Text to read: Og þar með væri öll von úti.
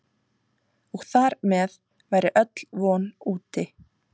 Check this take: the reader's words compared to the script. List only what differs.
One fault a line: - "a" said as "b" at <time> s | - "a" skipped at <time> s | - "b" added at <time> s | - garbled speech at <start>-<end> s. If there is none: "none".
none